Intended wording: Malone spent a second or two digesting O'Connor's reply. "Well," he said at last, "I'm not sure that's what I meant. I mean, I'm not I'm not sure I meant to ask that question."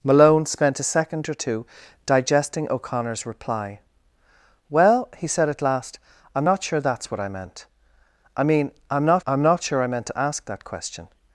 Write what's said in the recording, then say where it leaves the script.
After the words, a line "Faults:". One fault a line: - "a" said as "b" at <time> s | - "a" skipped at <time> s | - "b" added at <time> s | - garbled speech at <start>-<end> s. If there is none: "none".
Malone spent a second or two digesting O'Connor's reply. "Well," he said at last, "I'm not sure that's what I meant. I mean, I'm not I'm not sure I meant to ask that question."
Faults:
none